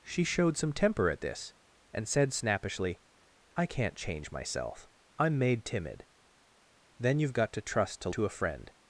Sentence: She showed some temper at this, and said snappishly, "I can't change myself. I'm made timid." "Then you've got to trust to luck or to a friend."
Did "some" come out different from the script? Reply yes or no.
no